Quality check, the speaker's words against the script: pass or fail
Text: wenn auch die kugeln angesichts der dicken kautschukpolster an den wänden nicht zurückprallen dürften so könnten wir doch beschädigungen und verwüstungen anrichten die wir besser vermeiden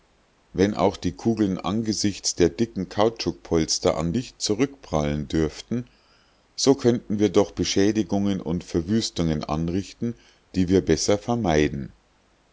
fail